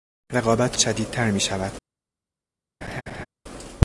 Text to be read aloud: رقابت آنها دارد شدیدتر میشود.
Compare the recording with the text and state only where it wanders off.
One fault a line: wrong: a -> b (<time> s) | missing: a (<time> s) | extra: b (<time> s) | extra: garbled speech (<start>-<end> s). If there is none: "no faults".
missing: آنها دارد (0.8 s)